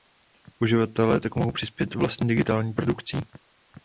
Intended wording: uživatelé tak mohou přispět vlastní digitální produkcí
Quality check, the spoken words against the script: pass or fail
pass